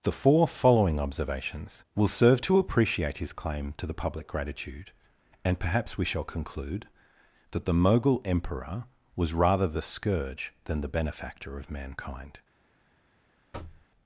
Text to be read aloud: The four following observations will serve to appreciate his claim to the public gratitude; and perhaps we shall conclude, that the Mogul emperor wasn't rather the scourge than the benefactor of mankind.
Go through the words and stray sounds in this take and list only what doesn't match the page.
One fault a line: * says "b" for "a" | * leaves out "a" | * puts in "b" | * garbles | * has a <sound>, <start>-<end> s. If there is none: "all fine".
* says "was" for "wasn't"
* has a thud, 13.5-13.9 s